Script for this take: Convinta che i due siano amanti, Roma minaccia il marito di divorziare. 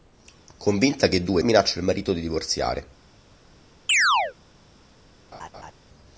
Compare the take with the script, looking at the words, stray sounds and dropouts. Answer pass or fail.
fail